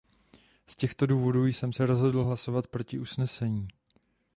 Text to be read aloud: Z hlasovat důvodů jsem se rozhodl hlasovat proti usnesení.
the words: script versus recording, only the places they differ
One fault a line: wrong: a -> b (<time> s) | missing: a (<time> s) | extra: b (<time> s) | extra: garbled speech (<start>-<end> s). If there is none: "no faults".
wrong: hlasovat -> těchto (0.8 s)